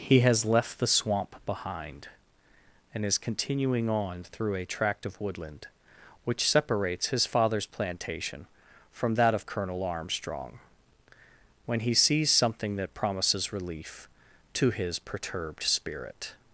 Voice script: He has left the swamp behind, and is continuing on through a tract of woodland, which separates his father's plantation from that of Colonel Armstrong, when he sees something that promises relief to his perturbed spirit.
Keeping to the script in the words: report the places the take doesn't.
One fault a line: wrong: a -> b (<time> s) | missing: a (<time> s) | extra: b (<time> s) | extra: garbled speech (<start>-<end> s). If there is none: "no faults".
no faults